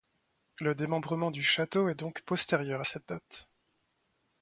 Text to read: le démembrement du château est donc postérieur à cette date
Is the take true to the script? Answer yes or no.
yes